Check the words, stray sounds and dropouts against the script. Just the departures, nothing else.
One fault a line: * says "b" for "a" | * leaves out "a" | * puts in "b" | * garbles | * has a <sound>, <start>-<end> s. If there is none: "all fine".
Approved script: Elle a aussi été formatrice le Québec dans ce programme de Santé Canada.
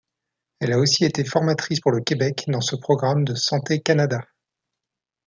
* puts in "pour"